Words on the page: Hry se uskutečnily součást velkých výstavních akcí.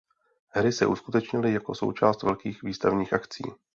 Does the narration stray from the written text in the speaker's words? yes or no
yes